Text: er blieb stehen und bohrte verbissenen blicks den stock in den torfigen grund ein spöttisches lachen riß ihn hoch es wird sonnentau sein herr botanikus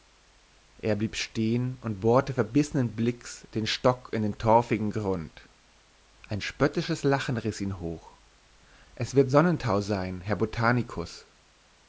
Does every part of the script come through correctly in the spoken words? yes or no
yes